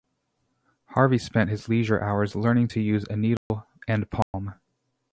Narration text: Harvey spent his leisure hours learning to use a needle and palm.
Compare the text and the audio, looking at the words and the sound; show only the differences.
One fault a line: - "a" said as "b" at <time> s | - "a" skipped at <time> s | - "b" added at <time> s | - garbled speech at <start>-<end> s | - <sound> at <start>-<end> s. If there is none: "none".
- dropout at 3.4-3.5 s
- dropout at 4.2-4.3 s